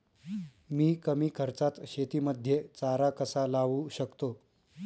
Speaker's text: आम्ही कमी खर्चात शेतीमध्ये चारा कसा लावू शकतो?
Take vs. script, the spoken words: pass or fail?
fail